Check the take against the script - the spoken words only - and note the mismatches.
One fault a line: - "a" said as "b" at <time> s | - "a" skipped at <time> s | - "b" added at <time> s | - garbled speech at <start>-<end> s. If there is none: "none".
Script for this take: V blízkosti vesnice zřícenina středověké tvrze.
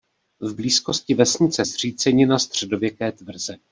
none